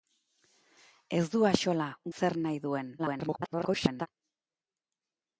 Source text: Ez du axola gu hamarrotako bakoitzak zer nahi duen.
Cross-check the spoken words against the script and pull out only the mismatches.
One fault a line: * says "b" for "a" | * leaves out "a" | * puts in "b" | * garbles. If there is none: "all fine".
* leaves out "gu hamarrotako bakoitzak"
* garbles